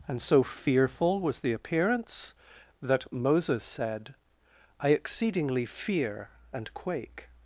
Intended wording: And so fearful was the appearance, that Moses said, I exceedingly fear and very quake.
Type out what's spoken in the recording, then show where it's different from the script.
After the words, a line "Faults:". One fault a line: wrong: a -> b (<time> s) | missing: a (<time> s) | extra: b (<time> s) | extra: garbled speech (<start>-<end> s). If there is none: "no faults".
And so fearful was the appearance, that Moses said, I exceedingly fear and quake.
Faults:
missing: very (6.7 s)